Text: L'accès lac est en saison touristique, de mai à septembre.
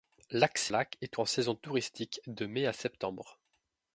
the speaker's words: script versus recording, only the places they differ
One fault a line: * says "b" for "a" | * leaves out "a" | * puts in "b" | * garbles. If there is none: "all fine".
all fine